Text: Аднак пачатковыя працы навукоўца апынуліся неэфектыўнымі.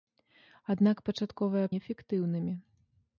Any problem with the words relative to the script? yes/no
yes